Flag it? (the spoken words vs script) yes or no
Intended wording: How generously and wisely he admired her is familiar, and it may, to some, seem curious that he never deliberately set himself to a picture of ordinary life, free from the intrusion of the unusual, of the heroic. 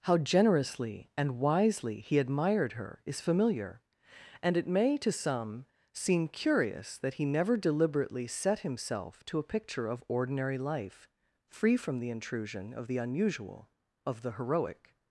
no